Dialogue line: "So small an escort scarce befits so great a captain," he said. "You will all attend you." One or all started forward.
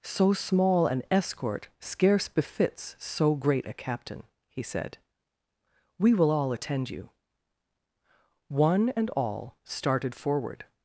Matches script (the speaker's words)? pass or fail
fail